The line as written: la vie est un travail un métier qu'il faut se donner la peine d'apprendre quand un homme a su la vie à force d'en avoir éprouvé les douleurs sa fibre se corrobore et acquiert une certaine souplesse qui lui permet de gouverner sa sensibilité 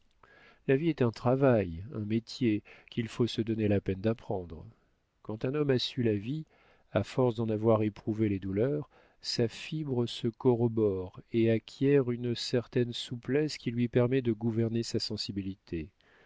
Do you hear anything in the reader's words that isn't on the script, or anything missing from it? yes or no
no